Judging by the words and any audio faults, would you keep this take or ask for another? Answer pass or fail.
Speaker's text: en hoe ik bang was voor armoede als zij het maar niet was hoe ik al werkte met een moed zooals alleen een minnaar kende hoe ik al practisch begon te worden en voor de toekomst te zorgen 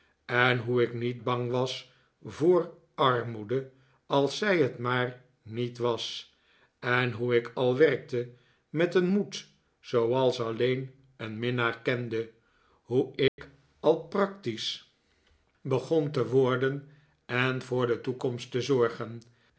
fail